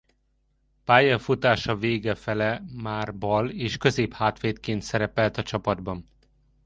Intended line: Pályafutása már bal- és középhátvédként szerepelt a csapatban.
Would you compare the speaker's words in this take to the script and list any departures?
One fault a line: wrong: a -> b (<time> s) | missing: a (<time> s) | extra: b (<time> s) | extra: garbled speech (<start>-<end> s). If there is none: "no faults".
extra: vége fele (1.8 s)